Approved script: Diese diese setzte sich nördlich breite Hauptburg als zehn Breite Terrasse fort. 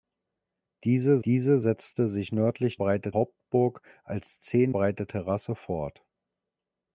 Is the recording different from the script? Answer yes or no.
no